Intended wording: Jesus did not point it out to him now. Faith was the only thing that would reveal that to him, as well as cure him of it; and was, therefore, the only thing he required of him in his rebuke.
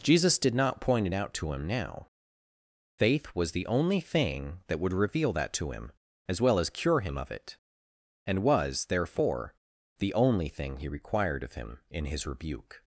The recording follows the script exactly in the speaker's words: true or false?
true